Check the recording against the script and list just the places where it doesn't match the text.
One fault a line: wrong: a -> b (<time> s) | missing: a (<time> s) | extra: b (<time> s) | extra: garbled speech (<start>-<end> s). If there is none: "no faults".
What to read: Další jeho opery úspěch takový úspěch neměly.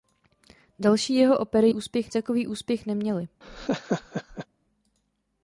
no faults